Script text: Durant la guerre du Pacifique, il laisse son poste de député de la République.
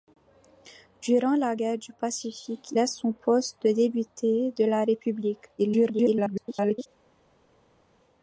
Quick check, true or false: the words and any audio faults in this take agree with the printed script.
false